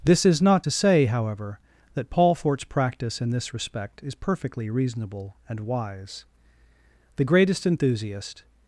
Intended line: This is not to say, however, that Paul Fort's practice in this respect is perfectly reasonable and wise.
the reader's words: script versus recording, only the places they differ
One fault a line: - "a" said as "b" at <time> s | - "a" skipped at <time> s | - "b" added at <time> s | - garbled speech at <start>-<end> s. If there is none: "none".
- "The greatest enthusiast" added at 7.2 s